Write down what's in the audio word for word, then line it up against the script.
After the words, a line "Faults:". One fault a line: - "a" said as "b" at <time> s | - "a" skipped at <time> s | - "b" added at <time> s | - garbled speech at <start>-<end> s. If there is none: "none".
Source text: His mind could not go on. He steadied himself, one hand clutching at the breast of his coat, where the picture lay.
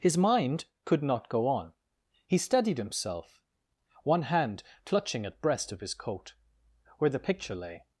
His mind could not go on. He steadied himself, one hand clutching at breast of his coat, where the picture lay.
Faults:
- "the" skipped at 5.4 s